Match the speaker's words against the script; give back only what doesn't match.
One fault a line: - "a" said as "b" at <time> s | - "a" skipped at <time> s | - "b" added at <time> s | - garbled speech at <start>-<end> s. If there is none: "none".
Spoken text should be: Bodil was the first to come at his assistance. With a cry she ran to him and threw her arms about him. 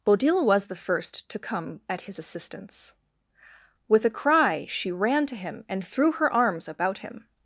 none